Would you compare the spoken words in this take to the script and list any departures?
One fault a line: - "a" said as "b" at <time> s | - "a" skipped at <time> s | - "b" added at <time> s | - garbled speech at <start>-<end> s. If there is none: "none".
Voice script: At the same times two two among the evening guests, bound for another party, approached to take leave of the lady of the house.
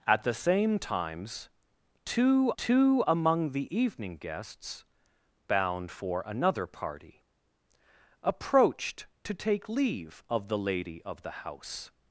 none